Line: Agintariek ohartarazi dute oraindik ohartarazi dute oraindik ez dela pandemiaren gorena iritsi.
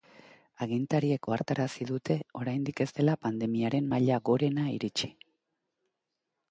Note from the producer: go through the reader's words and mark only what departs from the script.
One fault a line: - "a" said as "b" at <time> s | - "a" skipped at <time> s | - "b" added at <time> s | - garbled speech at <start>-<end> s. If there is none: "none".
- "ohartarazi dute oraindik" skipped at 2.8 s
- "maila" added at 3.9 s